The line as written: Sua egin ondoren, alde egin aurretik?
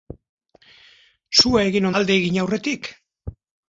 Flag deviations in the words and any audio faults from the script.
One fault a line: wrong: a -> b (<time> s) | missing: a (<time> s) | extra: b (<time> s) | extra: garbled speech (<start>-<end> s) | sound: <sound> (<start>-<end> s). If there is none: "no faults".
missing: ondoren (1.9 s)